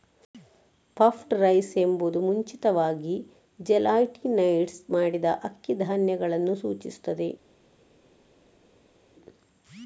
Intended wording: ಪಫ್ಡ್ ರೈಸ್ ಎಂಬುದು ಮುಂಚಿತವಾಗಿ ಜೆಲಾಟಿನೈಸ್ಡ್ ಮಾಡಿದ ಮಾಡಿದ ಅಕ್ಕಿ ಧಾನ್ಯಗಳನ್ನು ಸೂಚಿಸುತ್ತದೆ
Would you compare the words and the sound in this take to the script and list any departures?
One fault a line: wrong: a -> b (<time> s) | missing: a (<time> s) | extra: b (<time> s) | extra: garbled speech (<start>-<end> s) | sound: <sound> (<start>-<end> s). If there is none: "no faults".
missing: ಮಾಡಿದ (5.3 s)